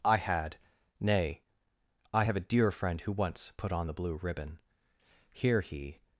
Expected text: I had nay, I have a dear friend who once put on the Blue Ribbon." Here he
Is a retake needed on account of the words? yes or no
no